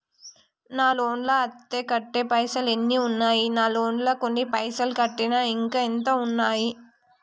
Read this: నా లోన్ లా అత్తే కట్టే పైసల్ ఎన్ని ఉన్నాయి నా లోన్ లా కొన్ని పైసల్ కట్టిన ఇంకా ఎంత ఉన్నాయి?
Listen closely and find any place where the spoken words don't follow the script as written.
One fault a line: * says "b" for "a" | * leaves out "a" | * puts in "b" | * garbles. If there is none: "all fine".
all fine